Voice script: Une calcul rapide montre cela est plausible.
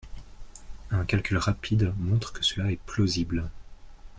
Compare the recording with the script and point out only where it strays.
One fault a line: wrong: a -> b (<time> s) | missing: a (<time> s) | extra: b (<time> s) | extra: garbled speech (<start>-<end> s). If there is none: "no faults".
wrong: Une -> Un (0.9 s)
extra: que (2.3 s)